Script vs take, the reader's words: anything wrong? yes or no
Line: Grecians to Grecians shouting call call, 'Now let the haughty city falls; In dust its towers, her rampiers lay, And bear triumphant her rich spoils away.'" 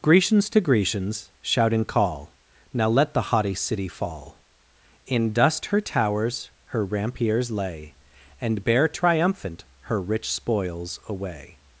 yes